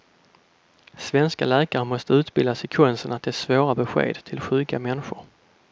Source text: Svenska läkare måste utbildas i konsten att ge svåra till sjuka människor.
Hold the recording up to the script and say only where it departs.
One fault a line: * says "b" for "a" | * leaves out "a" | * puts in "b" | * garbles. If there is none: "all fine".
* puts in "besked"